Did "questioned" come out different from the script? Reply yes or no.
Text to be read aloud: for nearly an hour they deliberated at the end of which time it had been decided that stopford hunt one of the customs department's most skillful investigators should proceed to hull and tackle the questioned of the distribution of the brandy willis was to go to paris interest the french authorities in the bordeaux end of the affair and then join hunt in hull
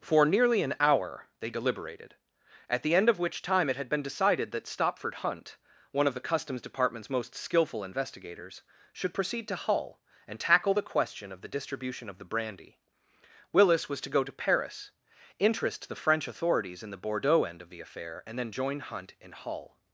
yes